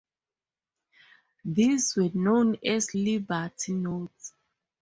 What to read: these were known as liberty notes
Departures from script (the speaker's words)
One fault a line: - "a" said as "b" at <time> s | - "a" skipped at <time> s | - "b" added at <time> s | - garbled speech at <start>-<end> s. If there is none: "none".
none